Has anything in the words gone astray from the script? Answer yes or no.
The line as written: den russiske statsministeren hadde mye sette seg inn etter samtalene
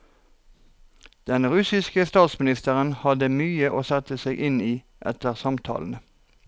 yes